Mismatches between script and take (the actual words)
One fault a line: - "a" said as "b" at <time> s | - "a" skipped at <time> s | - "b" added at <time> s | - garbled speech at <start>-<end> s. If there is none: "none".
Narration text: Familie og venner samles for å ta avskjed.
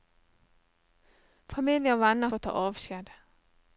- "samles" skipped at 2.3 s